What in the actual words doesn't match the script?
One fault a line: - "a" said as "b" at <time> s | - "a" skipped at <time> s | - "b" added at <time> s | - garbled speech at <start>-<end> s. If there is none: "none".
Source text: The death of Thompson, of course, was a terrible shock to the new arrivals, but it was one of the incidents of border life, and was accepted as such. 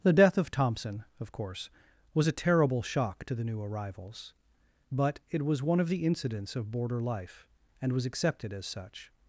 none